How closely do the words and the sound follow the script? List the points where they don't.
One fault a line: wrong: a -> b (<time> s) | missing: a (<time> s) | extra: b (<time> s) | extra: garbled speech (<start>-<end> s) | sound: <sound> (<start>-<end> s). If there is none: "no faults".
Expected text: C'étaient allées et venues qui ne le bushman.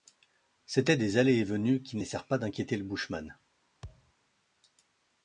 extra: des (1.0 s)
extra: laissèrent pas d'inquiéter (2.0 s)
sound: thud (3.8-4.1 s)